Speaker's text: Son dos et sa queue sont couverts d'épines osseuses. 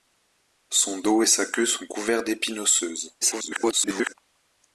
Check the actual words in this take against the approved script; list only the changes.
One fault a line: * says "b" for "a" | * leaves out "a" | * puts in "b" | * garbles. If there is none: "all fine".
* garbles